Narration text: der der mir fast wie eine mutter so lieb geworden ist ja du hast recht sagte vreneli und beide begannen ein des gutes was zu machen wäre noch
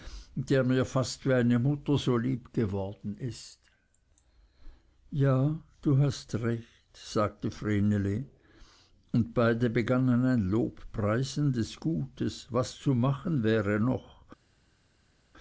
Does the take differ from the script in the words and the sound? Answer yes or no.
yes